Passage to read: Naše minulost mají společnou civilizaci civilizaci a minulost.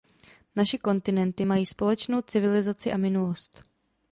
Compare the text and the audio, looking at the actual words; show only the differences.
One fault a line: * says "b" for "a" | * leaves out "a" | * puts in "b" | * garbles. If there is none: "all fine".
* says "kontinenty" for "minulost"
* leaves out "civilizaci"